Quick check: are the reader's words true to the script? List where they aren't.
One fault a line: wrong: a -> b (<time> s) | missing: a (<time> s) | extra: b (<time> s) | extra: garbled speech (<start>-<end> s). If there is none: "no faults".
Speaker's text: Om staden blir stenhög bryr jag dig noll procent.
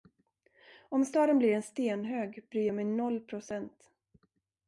extra: en (1.5 s)
wrong: dig -> mig (2.7 s)